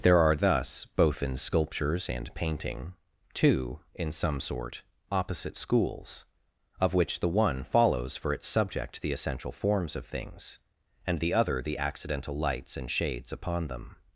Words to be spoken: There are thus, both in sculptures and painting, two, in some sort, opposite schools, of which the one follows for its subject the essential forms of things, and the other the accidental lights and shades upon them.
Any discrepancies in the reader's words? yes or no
no